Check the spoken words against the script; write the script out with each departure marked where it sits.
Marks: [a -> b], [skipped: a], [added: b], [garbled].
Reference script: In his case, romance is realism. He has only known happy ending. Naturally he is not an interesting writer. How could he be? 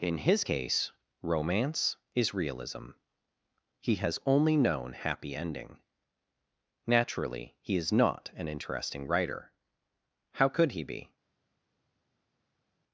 In his case, romance is realism. He has only known happy ending. Naturally he is not an interesting writer. How could he be?